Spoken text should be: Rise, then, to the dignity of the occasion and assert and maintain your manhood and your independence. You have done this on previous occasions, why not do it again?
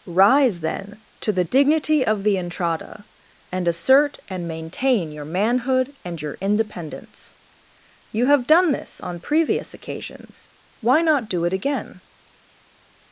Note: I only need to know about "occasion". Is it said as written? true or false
false